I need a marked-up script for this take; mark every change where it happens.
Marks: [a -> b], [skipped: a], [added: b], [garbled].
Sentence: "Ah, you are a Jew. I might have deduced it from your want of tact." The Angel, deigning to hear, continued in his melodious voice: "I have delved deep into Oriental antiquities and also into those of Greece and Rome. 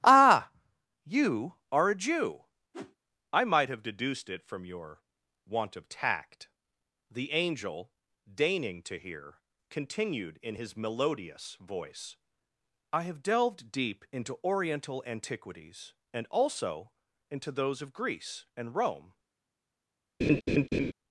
"Ah, you are a Jew. I might have deduced it from your want of tact." The Angel, deigning to hear, continued in his melodious voice: "I have delved deep into Oriental antiquities and also into those of Greece and Rome.